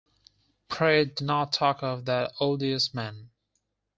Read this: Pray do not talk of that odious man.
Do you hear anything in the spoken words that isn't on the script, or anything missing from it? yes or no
no